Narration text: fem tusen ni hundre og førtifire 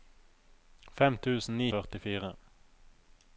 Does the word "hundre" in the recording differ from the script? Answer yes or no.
yes